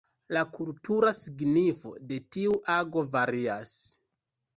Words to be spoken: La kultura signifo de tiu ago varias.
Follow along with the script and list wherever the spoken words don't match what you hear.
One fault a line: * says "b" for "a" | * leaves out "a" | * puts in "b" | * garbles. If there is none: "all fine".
all fine